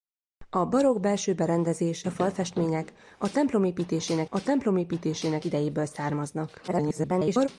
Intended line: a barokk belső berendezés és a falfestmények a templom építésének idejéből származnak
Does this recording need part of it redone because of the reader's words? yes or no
yes